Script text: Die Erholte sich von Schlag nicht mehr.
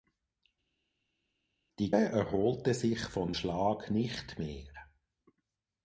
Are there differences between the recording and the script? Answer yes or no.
no